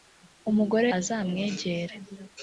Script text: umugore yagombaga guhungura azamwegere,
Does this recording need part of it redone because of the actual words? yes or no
yes